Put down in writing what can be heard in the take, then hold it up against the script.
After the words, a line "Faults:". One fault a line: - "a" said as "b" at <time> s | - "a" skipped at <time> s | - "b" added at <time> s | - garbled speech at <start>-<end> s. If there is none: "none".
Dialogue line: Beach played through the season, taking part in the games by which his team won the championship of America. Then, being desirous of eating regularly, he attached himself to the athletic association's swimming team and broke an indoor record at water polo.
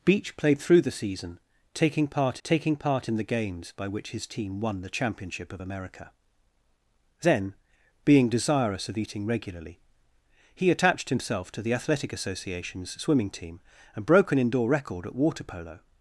Beach played through the season, taking part taking part in the games by which his team won the championship of America. Then, being desirous of eating regularly, he attached himself to the athletic association's swimming team and broke an indoor record at water polo.
Faults:
- "taking part" added at 2.4 s